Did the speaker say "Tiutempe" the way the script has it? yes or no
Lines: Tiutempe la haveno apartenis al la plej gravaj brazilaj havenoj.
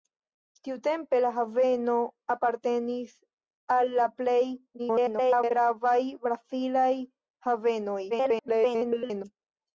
yes